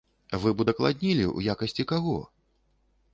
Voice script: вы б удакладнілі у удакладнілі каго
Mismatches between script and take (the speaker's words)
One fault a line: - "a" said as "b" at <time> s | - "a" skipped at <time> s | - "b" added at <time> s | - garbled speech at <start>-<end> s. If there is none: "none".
- "удакладнілі" said as "якасці" at 1.5 s